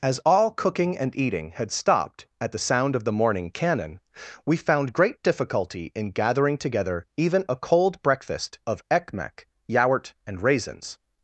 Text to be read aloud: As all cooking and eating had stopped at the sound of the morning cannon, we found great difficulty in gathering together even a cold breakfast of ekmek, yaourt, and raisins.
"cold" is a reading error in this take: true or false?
false